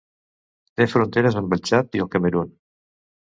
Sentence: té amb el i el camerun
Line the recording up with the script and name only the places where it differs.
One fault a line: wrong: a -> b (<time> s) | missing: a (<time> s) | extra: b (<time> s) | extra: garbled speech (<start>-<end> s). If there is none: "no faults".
extra: fronteres (0.9 s)
extra: txad (1.7 s)